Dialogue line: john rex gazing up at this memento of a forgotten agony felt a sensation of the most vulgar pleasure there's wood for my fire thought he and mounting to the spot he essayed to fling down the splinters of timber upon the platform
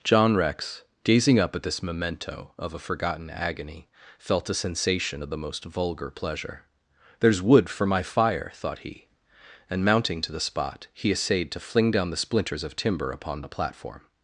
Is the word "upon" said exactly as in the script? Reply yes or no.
yes